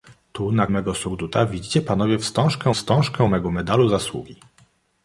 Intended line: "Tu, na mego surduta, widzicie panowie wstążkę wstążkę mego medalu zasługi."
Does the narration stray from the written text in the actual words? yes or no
no